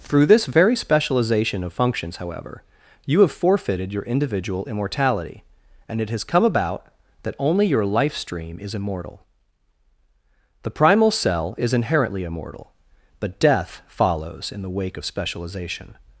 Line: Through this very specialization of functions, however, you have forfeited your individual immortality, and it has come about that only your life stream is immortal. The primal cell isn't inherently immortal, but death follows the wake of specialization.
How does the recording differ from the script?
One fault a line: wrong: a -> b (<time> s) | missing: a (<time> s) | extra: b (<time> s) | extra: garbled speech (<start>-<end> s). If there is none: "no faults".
wrong: isn't -> is (11.6 s)
extra: in (14.5 s)